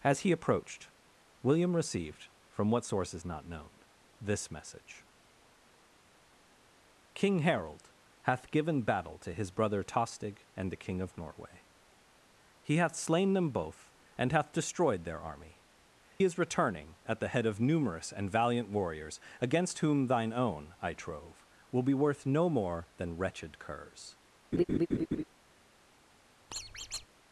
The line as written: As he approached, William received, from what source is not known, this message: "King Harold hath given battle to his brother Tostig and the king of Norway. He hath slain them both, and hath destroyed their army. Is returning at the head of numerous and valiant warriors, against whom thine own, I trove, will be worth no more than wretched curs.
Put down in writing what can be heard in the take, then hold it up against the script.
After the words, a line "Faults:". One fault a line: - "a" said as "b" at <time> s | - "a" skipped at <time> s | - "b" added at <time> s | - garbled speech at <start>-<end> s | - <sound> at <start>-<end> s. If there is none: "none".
As he approached, William received, from what source is not known, this message: "King Harold hath given battle to his brother Tostig and the king of Norway. He hath slain them both, and hath destroyed their army. Is returning at the head of numerous and valiant warriors, against whom thine own, I trove, will be worth no more than wretched curs.
Faults:
- laugh at 24.5-25.2 s
- squeak at 26.5-27.1 s